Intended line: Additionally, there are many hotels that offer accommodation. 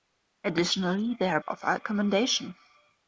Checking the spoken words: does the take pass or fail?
fail